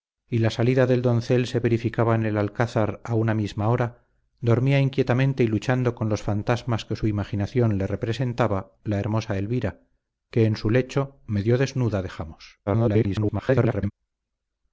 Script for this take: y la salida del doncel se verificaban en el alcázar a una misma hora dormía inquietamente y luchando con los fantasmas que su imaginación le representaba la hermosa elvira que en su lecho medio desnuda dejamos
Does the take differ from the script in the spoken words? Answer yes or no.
yes